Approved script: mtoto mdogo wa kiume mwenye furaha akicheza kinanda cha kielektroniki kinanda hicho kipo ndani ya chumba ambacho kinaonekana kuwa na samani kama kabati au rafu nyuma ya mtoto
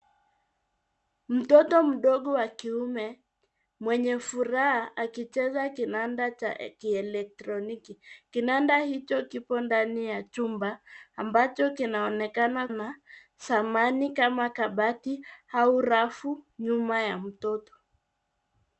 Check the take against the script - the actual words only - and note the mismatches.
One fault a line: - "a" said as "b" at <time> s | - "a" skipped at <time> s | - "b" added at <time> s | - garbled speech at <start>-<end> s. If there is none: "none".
- "kuwa" skipped at 12.7 s